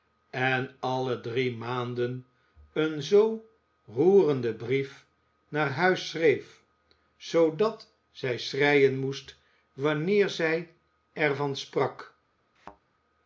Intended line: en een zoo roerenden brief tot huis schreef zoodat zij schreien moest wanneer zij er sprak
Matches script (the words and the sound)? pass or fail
fail